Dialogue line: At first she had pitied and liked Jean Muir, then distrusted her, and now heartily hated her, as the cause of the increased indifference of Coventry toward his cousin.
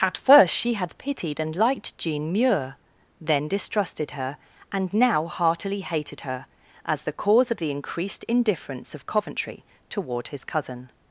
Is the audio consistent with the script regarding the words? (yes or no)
yes